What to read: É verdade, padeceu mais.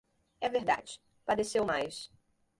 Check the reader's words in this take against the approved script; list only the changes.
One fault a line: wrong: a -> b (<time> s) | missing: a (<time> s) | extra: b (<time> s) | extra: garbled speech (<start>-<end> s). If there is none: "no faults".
no faults